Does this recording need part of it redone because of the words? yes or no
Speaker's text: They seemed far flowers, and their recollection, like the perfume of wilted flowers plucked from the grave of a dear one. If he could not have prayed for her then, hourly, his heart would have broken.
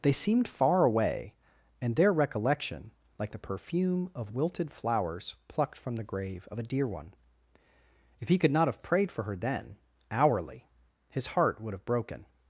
yes